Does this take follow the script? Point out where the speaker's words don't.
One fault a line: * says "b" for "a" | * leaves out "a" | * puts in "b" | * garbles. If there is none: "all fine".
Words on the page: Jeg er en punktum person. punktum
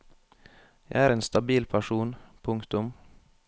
* says "stabil" for "punktum"